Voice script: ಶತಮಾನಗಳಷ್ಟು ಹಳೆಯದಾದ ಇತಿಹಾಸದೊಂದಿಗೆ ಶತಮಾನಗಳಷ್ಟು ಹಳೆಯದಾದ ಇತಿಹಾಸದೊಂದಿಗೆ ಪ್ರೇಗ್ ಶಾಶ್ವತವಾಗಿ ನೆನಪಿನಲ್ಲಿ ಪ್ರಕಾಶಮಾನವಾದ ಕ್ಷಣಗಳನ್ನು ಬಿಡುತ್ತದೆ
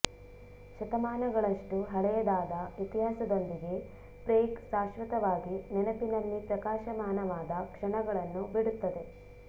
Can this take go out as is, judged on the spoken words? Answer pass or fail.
fail